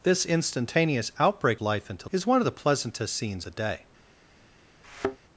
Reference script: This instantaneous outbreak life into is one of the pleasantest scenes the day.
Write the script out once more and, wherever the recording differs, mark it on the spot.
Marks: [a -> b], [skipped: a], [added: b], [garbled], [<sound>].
This instantaneous outbreak life into is one of the pleasantest scenes the day. [thud]